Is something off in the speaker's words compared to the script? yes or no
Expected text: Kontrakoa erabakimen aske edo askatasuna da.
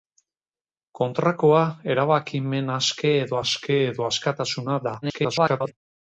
yes